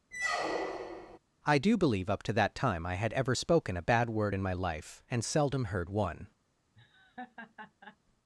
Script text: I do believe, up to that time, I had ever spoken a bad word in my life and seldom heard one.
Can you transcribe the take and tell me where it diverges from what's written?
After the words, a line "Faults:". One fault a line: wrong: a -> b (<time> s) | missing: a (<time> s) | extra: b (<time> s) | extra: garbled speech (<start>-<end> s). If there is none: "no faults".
I do believe, up to that time, I had ever spoken a bad word in my life and seldom heard one.
Faults:
no faults